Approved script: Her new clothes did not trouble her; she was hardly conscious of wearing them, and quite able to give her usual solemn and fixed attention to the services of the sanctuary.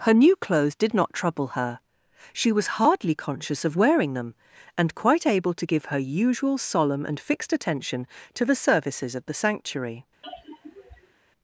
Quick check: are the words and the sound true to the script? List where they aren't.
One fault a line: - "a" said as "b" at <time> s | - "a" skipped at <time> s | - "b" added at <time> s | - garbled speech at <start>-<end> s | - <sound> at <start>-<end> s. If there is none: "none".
- sigh at 10.2-11.1 s